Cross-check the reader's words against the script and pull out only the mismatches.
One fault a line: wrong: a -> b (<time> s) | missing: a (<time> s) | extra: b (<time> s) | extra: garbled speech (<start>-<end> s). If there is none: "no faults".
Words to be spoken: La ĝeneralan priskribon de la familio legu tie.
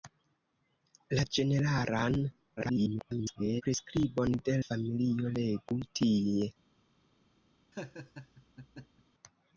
extra: garbled speech (2.6-3.6 s)
missing: la (4.5 s)